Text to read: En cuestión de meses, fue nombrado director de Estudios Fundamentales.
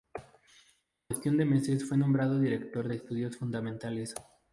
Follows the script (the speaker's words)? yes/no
yes